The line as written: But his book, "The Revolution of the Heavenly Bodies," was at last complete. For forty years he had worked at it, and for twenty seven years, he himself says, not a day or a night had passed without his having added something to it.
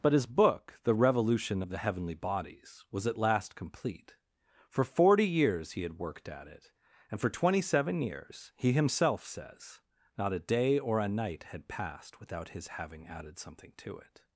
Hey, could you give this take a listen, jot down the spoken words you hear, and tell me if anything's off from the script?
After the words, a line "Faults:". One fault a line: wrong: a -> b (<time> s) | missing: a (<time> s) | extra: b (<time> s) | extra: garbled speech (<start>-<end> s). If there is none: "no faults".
But his book, "The Revolution of the Heavenly Bodies," was at last complete. For forty years he had worked at it, and for twenty seven years, he himself says, not a day or a night had passed without his having added something to it.
Faults:
no faults